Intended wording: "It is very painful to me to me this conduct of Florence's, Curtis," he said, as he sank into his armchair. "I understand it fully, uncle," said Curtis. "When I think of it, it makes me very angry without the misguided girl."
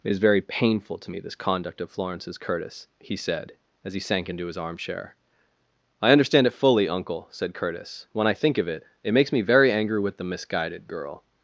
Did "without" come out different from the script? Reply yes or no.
yes